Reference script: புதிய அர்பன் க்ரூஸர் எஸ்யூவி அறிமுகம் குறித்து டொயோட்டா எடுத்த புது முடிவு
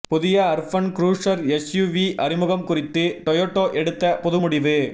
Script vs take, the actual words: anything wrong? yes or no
no